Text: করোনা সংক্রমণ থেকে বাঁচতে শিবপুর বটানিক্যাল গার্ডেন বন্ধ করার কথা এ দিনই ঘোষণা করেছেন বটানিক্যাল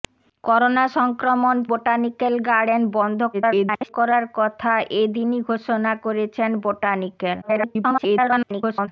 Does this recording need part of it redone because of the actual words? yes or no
yes